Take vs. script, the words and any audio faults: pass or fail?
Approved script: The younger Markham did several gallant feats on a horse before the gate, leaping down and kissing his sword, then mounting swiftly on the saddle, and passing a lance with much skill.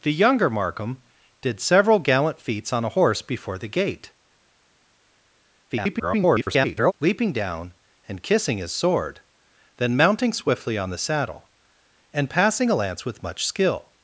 fail